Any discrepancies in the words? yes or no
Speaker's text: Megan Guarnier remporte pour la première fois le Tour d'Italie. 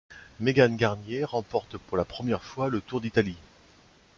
no